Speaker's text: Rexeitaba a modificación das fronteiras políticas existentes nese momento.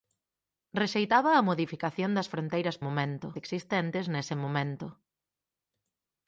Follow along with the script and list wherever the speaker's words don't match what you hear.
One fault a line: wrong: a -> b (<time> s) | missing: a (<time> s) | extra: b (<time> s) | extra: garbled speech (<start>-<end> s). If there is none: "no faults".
wrong: políticas -> momento (2.8 s)